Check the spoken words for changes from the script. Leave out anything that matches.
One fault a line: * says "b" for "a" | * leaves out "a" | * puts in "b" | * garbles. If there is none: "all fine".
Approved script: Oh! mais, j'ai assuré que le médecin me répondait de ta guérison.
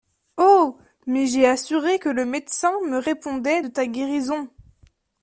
all fine